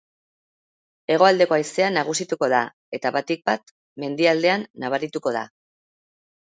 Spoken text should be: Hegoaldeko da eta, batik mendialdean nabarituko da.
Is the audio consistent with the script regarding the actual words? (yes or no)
no